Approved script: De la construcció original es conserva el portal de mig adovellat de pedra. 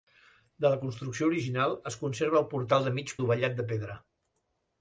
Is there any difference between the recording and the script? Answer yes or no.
no